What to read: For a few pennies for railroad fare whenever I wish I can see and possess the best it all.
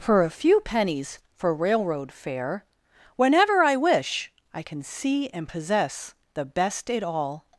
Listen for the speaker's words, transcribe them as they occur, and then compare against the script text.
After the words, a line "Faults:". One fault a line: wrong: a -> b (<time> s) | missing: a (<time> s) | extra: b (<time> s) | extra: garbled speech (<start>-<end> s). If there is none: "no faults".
For a few pennies for railroad fare whenever I wish I can see and possess the best it all.
Faults:
no faults